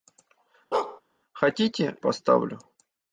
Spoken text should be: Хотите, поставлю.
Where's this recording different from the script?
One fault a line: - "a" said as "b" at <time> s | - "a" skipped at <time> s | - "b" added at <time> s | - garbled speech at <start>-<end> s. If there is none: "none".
none